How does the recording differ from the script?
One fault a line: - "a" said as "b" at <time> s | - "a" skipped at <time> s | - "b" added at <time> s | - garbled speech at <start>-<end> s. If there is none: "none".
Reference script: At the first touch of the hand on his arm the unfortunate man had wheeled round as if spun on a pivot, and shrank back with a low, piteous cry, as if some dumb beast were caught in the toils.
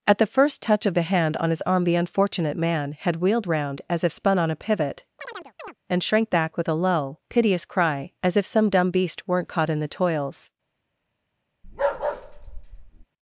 - "were" said as "weren't" at 9.3 s